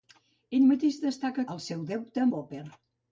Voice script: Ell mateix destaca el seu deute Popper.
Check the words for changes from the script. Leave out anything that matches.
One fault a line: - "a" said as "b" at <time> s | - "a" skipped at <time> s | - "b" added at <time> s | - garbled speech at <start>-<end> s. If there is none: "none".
none